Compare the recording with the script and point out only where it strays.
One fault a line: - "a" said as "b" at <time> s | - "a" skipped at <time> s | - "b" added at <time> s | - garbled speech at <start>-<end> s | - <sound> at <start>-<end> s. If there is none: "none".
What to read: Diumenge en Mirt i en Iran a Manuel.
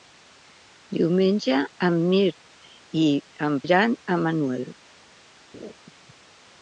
- laugh at 5.5-5.7 s